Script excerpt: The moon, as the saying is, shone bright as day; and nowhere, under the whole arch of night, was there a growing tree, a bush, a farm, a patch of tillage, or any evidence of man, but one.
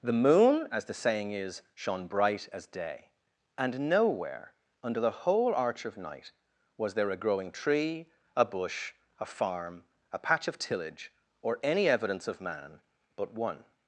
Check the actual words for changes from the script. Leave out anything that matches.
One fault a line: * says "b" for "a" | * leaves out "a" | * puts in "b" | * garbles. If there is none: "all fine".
all fine